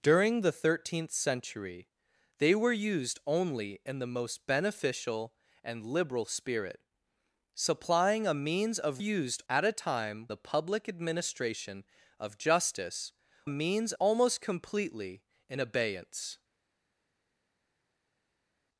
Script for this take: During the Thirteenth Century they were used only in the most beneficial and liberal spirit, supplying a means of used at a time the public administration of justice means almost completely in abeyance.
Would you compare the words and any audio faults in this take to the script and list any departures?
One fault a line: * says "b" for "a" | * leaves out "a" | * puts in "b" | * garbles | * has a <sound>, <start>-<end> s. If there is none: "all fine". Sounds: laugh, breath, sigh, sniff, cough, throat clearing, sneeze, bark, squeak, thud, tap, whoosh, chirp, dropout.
all fine